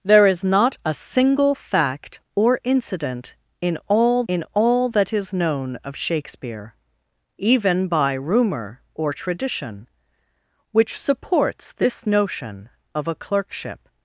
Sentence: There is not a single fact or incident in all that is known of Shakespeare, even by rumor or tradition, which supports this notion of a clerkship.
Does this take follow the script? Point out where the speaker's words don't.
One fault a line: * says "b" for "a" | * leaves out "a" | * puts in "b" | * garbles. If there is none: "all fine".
* puts in "in all"